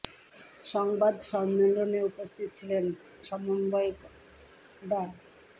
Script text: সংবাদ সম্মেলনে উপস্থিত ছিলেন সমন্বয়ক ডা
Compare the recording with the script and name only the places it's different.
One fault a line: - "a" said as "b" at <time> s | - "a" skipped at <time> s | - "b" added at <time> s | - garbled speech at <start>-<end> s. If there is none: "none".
none